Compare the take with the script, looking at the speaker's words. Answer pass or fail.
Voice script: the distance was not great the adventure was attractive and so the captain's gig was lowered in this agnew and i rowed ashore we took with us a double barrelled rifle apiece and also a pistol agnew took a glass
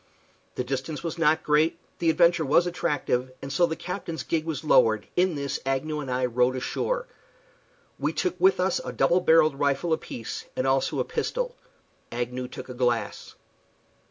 pass